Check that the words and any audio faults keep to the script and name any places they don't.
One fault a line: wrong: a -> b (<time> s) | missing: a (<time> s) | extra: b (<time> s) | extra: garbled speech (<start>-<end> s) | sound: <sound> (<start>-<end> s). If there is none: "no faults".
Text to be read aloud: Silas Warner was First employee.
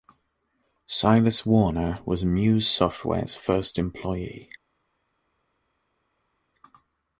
extra: Muse Software's (2.2 s)